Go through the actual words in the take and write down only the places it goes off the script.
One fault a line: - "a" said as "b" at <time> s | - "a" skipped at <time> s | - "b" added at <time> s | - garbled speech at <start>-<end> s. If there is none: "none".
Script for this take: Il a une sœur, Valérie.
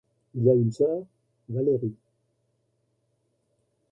none